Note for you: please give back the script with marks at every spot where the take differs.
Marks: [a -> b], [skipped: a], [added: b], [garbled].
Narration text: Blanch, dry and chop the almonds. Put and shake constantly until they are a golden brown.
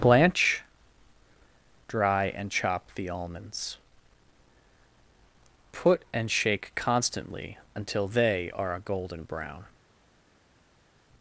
Blanch, dry and chop the almonds. Put and shake constantly until they are a golden brown.